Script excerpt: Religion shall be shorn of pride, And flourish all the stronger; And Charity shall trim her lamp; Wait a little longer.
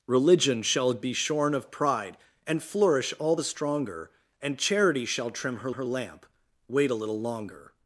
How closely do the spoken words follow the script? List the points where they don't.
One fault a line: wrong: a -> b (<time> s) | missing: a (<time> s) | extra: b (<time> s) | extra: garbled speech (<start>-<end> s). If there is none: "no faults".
extra: her (5.7 s)